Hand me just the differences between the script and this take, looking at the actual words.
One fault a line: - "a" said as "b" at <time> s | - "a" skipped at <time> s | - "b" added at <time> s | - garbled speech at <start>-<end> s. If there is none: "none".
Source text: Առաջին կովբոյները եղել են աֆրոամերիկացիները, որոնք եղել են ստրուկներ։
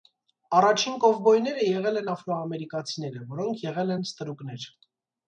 none